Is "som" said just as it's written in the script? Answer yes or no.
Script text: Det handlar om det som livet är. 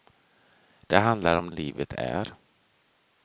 no